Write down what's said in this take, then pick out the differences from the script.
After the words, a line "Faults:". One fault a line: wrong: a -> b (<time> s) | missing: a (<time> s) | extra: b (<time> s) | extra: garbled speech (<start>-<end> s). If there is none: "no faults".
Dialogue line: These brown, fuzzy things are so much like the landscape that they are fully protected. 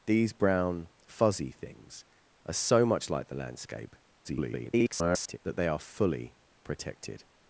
These brown, fuzzy things are so much like the landscape [garbled] that they are fully protected.
Faults:
extra: garbled speech (4.2-5.4 s)